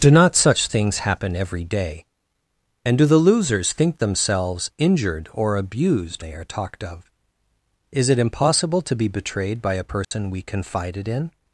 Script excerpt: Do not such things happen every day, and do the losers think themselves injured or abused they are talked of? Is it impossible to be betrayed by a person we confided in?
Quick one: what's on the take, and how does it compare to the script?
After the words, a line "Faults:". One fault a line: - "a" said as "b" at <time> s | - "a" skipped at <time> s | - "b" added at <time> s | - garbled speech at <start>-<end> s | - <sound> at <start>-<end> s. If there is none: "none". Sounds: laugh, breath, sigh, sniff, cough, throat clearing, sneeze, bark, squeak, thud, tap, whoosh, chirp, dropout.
Do not such things happen every day, and do the losers think themselves injured or abused they are talked of? Is it impossible to be betrayed by a person we confided in?
Faults:
- dropout at 10.0-10.1 s